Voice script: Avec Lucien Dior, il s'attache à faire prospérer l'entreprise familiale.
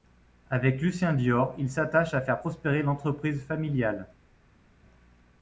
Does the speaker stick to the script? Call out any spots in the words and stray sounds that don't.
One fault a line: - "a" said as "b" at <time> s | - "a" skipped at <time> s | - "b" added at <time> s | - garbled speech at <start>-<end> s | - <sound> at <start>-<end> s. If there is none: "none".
none